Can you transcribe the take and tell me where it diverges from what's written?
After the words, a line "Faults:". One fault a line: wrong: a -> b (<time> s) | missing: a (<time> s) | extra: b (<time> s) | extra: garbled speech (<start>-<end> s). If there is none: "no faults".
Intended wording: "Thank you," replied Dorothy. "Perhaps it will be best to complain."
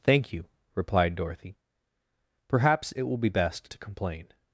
"Thank you," replied Dorothy. "Perhaps it will be best to complain."
Faults:
no faults